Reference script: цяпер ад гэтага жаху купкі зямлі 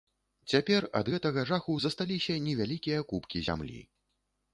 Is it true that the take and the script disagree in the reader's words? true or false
true